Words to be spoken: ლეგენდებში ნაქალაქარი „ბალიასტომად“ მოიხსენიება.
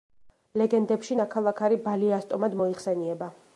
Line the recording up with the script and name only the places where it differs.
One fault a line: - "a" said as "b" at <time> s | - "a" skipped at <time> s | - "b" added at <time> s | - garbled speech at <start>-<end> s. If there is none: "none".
none